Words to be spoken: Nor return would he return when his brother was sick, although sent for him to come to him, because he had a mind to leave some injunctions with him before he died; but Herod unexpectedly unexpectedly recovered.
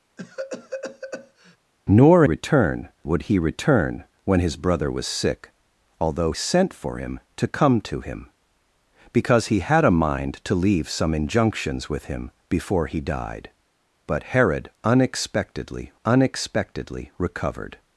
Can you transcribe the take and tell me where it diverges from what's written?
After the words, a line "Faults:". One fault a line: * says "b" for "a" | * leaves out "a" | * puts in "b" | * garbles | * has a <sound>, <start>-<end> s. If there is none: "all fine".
Nor return would he return when his brother was sick, although sent for him to come to him, because he had a mind to leave some injunctions with him before he died; but Herod unexpectedly unexpectedly recovered.
Faults:
* has a cough, 0.2-1.6 s